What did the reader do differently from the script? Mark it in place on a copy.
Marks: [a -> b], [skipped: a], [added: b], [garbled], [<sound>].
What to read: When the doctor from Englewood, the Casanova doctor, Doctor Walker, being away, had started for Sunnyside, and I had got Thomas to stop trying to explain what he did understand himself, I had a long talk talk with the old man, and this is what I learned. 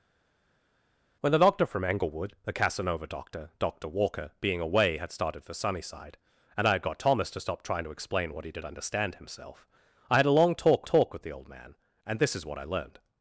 When the doctor from Englewood, the Casanova doctor, Doctor Walker, being away, had started for Sunnyside, and I had got Thomas to stop trying to explain what he did understand himself, I had a long talk talk with the old man, and this is what I learned.